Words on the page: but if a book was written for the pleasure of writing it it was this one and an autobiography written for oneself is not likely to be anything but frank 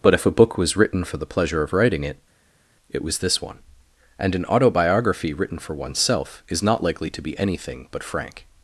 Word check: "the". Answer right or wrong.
right